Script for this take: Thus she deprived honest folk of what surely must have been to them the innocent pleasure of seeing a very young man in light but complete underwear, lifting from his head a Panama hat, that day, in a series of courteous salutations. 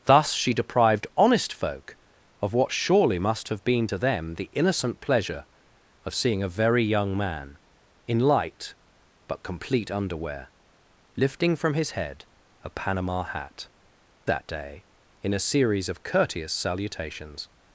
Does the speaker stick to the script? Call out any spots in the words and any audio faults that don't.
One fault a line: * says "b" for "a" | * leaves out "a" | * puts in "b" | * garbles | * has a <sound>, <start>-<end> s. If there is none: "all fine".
all fine